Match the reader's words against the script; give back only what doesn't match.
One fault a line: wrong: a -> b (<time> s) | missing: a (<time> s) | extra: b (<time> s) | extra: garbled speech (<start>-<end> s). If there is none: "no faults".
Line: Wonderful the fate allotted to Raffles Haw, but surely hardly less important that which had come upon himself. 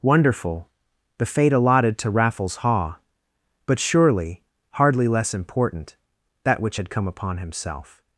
no faults